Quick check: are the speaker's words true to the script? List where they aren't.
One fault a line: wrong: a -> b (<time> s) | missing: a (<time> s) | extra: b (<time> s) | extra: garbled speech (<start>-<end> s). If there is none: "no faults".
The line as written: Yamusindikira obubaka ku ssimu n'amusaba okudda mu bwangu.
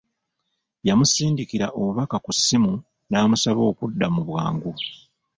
no faults